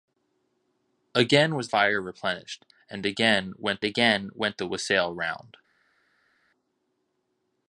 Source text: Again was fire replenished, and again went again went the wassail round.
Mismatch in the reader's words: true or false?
false